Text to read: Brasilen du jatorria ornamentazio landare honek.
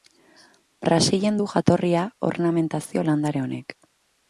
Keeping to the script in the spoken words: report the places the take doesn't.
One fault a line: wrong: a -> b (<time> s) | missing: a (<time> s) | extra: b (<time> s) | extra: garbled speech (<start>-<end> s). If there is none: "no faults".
no faults